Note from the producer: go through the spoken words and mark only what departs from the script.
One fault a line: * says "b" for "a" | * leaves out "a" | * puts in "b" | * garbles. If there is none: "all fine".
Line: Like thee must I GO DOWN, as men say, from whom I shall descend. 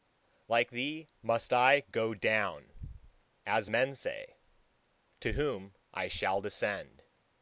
* says "to" for "from"